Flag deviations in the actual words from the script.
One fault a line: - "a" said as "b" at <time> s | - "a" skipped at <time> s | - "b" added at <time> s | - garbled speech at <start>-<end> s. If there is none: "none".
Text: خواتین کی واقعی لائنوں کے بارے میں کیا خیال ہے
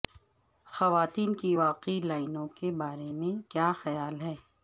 none